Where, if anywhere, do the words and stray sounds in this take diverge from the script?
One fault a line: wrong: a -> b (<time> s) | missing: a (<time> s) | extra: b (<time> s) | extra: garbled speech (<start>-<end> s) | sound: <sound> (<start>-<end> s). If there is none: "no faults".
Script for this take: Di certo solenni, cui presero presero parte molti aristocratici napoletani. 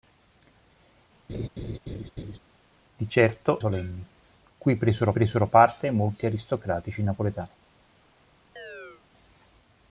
sound: laugh (1.3-2.4 s)
sound: chirp (8.6-9.0 s)